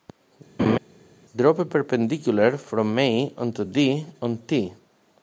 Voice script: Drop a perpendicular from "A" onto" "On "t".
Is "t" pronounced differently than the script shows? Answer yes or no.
no